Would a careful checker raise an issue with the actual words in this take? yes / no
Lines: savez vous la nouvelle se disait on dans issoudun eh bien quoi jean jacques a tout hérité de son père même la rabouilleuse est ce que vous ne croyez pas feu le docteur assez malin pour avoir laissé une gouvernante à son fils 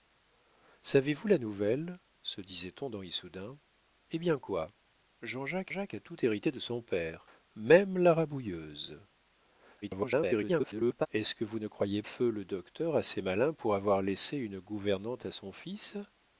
yes